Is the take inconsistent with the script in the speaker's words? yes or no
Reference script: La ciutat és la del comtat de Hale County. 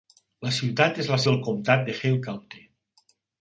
no